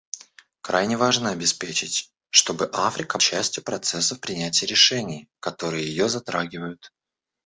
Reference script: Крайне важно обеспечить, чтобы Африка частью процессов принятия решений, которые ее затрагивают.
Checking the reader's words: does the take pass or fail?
pass